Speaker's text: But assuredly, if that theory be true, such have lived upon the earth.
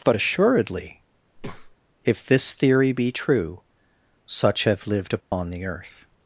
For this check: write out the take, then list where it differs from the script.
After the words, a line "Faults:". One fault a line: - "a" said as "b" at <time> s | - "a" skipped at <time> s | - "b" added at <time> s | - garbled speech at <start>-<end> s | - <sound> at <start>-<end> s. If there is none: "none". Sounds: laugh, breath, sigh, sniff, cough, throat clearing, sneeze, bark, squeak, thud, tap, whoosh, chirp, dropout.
But assuredly, if this theory be true, such have lived upon the earth.
Faults:
- breath at 1.3-1.8 s
- "that" said as "this" at 2.2 s
- dropout at 5.2-5.3 s